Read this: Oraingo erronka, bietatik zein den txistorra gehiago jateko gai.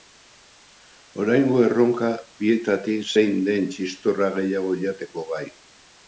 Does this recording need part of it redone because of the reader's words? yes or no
no